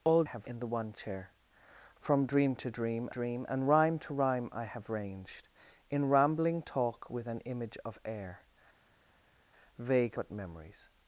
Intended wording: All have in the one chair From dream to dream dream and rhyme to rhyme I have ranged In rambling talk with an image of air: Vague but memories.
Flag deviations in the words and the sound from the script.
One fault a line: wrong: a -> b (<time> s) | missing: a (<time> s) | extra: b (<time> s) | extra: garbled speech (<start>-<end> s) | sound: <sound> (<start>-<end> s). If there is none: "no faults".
no faults